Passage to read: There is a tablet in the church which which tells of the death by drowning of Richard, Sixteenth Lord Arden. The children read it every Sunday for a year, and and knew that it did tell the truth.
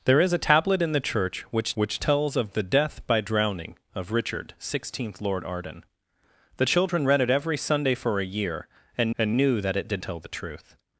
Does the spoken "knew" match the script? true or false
true